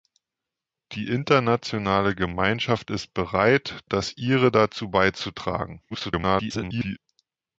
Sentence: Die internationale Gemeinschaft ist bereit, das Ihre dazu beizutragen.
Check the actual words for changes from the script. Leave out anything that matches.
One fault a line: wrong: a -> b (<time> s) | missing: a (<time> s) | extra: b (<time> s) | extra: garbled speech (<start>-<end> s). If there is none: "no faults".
extra: garbled speech (5.9-7.0 s)